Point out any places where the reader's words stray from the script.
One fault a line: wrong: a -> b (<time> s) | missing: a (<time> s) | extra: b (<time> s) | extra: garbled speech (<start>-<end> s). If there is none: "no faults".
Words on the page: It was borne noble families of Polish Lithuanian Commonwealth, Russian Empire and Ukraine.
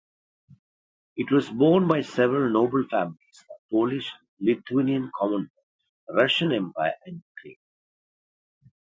extra: by several (1.9 s)